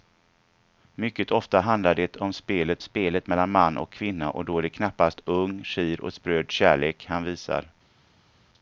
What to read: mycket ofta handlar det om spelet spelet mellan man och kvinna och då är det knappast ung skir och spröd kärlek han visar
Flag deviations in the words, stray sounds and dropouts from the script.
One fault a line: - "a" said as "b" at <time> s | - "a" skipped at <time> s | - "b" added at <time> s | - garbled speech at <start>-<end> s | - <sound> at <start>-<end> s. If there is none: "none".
none